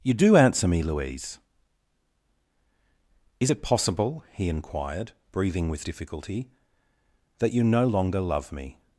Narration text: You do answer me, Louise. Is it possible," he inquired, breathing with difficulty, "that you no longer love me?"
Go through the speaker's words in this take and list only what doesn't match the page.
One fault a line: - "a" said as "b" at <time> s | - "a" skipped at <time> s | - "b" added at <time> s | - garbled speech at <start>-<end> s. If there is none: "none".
none